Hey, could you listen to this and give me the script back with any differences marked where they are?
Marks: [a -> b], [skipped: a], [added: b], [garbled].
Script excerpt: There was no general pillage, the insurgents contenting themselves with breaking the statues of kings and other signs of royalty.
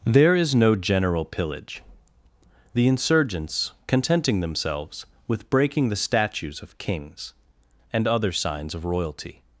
There [was -> is] no general pillage, the insurgents contenting themselves with breaking the statues of kings and other signs of royalty.